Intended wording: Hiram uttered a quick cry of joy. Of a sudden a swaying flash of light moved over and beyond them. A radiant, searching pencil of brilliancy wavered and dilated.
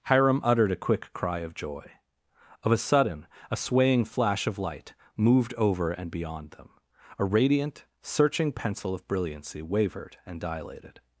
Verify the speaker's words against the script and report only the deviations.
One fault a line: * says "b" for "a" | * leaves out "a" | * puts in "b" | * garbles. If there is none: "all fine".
all fine